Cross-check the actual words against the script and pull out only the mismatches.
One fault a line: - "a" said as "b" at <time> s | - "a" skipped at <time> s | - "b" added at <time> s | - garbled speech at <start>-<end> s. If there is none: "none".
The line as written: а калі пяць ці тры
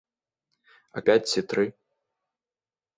- "калі" skipped at 1.0 s